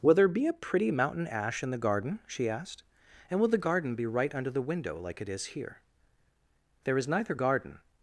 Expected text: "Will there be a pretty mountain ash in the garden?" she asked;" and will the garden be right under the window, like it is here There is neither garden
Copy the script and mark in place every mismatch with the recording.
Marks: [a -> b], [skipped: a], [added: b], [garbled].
"Will there be a pretty mountain ash in the garden?" she asked;" and will the garden be right under the window, like it is here There is neither garden